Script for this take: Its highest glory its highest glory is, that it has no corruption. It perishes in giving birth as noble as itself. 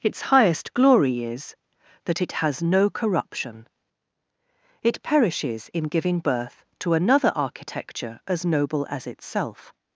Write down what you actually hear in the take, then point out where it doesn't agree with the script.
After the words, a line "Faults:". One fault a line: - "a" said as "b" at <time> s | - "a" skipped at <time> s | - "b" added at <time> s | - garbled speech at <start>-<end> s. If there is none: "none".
Its highest glory is, that it has no corruption. It perishes in giving birth to another architecture as noble as itself.
Faults:
- "its highest glory" skipped at 1.2 s
- "to another architecture" added at 6.8 s